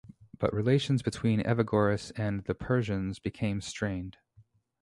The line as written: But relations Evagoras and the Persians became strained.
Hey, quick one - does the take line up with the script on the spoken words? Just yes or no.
no